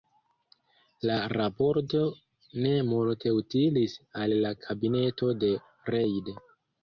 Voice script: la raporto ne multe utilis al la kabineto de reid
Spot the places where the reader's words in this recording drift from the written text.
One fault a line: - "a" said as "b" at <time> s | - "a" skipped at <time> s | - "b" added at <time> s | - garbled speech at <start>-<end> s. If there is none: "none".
none